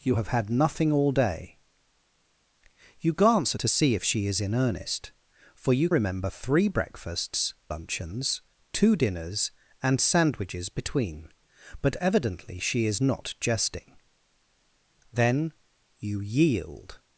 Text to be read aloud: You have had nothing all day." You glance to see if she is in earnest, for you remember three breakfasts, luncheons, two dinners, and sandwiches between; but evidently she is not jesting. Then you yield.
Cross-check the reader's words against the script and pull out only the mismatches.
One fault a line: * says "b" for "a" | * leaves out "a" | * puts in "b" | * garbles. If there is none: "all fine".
all fine